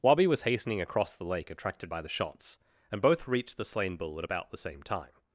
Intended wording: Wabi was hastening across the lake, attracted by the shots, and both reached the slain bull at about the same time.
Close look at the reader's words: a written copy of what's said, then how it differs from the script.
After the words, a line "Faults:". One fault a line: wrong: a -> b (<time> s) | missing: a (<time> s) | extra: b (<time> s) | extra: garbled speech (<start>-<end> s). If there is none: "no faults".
Wabi was hastening across the lake, attracted by the shots, and both reached the slain bull at about the same time.
Faults:
no faults